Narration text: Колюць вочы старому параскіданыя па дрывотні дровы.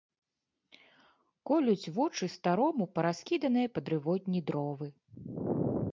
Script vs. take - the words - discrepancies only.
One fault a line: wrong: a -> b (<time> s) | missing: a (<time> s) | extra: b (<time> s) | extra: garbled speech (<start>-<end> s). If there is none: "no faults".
no faults